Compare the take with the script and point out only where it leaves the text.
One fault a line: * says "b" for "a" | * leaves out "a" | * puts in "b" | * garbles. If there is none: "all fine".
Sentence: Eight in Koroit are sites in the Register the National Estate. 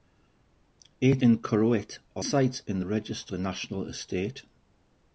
all fine